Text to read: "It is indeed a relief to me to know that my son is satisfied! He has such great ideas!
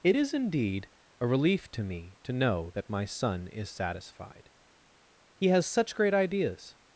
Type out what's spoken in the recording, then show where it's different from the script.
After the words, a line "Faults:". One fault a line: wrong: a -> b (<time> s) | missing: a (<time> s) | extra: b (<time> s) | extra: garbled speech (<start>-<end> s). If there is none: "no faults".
"It is indeed a relief to me to know that my son is satisfied! He has such great ideas!
Faults:
no faults